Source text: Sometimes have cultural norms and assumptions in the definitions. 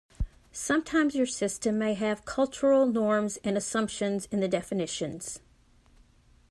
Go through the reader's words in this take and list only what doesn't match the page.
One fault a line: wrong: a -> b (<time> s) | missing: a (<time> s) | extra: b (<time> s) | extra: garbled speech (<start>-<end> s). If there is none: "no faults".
extra: your system may (1.1 s)